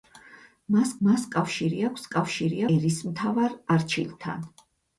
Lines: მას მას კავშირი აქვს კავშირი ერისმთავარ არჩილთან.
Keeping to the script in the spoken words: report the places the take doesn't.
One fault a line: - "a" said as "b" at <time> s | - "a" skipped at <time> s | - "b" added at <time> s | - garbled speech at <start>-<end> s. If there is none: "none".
none